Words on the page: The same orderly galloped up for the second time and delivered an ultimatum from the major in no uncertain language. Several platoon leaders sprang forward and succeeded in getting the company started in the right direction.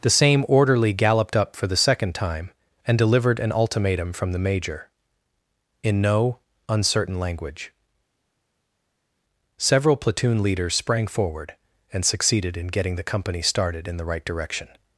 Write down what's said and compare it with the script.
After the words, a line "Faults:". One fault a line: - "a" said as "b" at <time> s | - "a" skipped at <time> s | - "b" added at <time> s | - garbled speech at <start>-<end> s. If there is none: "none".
The same orderly galloped up for the second time and delivered an ultimatum from the major in no uncertain language. Several platoon leaders sprang forward and succeeded in getting the company started in the right direction.
Faults:
none